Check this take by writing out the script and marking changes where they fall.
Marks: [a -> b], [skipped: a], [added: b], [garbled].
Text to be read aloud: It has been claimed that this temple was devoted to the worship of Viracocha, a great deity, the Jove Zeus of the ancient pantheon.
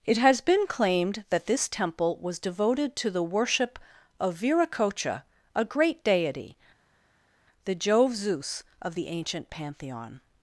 It has been claimed that this temple was devoted to the worship of Viracocha, a great deity, the Jove Zeus of the ancient pantheon.